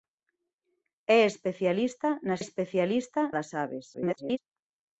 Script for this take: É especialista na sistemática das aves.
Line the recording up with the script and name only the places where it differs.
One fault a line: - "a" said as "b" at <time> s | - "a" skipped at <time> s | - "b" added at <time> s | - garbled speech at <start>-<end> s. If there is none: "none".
- "sistemática" said as "especialista" at 2.4 s
- garbled speech at 3.9-4.4 s